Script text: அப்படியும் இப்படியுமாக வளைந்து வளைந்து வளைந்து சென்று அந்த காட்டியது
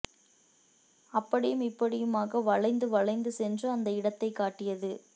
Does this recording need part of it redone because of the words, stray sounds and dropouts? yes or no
yes